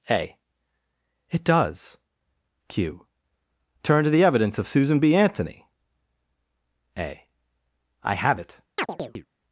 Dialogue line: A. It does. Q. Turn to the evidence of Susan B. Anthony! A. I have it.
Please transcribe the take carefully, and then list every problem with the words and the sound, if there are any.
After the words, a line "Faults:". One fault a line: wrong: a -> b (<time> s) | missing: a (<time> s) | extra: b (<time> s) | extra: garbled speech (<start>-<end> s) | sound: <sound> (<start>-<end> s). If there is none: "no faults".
A. It does. Q. Turn to the evidence of Susan B. Anthony! A. I have it.
Faults:
sound: chirp (8.8-9.3 s)